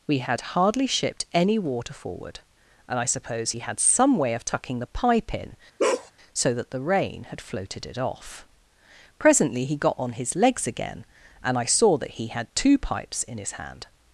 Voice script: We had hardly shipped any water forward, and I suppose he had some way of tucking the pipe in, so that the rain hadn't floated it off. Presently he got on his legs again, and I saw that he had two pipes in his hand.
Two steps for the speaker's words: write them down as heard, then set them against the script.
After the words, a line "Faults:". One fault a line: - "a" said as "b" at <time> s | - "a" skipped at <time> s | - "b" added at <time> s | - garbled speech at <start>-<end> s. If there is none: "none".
We had hardly shipped any water forward, and I suppose he had some way of tucking the pipe in, so that the rain had floated it off. Presently he got on his legs again, and I saw that he had two pipes in his hand.
Faults:
- "hadn't" said as "had" at 7.3 s